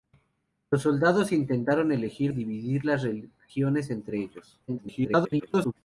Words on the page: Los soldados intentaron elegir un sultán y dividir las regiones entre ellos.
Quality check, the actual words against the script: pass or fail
fail